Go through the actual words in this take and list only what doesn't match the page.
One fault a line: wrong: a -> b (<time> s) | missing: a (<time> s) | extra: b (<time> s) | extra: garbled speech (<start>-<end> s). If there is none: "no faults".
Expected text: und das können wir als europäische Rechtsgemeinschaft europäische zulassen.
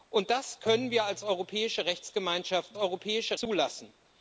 no faults